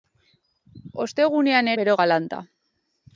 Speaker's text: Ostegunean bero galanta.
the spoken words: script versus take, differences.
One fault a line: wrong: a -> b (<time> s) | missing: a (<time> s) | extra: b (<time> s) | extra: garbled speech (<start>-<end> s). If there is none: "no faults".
no faults